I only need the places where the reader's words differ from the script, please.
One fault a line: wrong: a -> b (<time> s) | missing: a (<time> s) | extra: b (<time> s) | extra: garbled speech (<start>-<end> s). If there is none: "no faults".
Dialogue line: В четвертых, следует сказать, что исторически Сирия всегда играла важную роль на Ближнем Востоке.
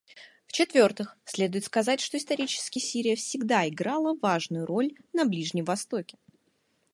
no faults